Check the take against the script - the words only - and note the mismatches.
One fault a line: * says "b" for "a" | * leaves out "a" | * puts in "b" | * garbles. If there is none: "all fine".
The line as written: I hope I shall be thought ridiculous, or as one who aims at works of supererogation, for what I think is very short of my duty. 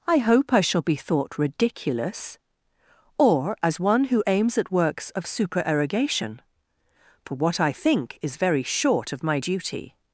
all fine